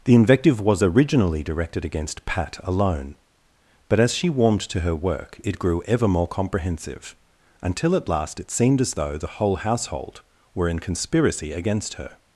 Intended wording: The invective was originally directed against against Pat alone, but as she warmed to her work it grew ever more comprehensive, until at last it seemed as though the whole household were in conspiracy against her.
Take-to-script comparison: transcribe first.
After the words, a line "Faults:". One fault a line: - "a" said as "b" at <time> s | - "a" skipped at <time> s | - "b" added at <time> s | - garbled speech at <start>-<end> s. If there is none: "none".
The invective was originally directed against Pat alone, but as she warmed to her work it grew ever more comprehensive, until at last it seemed as though the whole household were in conspiracy against her.
Faults:
- "against" skipped at 2.2 s